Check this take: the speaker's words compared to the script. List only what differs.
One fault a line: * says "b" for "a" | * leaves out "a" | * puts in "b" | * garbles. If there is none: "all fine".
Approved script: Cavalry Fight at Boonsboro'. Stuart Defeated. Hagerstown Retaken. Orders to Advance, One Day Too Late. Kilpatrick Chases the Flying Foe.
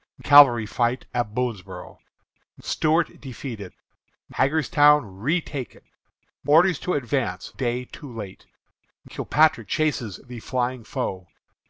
* leaves out "One"